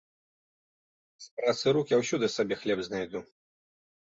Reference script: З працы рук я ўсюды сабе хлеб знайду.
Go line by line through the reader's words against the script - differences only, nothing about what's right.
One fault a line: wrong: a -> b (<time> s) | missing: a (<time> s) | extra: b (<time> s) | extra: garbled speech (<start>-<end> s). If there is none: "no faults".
no faults